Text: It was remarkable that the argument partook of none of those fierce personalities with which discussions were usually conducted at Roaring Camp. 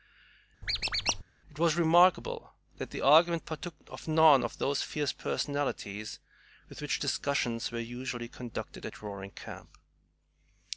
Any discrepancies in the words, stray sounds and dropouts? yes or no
yes